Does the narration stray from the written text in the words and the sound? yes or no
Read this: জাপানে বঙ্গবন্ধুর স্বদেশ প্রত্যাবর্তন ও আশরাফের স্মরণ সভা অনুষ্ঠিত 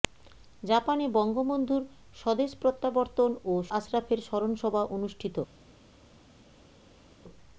no